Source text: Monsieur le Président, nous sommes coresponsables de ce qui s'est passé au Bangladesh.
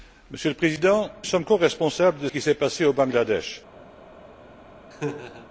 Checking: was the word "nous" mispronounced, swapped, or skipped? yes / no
yes